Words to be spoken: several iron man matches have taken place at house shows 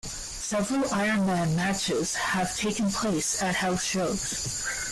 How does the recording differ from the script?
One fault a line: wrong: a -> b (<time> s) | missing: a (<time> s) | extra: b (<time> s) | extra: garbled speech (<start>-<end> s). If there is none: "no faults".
no faults